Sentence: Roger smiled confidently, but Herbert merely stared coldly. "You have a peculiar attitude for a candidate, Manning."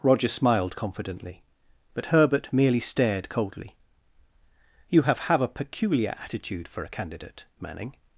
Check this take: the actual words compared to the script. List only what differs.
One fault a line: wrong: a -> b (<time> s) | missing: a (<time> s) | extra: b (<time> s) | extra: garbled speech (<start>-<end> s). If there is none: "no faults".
extra: have (5.3 s)